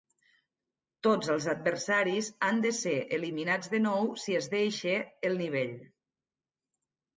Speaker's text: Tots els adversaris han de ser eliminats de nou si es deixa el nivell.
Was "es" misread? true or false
false